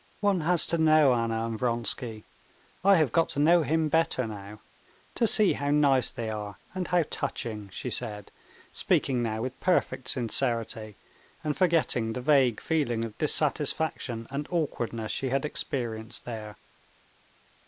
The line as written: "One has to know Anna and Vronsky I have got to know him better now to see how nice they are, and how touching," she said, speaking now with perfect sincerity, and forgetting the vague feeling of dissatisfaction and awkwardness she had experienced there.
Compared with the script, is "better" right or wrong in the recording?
right